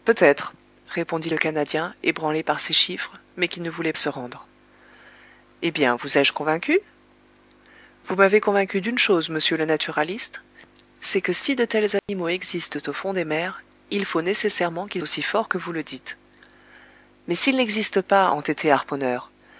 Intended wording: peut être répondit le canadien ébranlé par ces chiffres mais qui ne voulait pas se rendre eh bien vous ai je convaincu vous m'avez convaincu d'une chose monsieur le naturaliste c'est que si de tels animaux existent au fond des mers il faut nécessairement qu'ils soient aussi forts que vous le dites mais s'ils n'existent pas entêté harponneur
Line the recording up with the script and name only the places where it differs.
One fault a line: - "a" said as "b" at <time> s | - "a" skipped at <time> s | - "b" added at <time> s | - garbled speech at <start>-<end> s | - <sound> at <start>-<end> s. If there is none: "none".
- "pas" skipped at 3.9 s
- dropout at 12.0-12.1 s
- "soient" skipped at 15.0 s